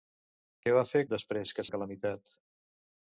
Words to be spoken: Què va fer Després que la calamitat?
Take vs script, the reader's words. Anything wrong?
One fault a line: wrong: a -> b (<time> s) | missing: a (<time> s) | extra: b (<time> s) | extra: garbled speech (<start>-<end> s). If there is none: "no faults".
no faults